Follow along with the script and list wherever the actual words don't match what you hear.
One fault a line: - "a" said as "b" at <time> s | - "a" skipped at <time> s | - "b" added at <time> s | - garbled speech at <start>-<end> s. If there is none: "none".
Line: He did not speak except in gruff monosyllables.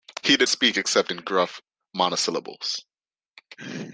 - "not" skipped at 0.5 s